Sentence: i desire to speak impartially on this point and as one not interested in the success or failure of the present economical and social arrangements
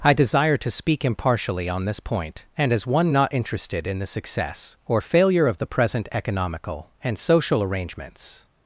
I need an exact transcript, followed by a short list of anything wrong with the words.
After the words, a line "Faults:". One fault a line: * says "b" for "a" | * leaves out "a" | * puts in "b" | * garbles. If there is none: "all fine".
i desire to speak impartially on this point and as one not interested in the success or failure of the present economical and social arrangements
Faults:
all fine